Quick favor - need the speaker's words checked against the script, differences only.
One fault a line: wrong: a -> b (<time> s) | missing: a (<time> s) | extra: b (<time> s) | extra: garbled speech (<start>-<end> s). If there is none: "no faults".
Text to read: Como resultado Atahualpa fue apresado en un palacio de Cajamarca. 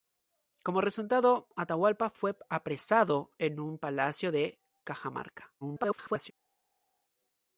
extra: garbled speech (5.6-6.3 s)